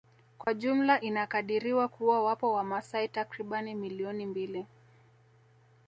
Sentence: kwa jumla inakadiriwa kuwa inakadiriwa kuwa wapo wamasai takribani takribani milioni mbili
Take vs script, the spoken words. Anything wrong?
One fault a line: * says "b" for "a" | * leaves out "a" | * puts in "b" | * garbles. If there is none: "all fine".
* leaves out "inakadiriwa kuwa"
* leaves out "takribani"